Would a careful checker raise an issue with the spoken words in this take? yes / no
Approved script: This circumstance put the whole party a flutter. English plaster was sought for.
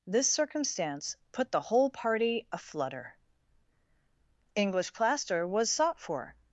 no